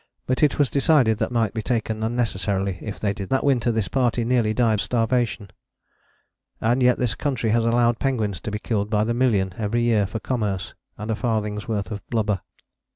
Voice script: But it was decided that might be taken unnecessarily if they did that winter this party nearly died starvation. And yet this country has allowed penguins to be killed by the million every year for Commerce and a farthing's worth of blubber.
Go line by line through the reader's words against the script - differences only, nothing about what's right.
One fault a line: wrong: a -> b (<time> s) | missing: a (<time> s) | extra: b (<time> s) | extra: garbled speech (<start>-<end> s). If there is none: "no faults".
no faults